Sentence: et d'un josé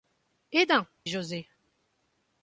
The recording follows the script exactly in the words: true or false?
true